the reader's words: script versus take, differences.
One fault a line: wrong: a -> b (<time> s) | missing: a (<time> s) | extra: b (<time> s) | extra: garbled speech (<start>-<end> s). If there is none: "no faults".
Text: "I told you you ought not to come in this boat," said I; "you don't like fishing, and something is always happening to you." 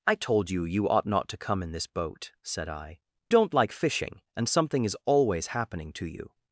missing: you (3.0 s)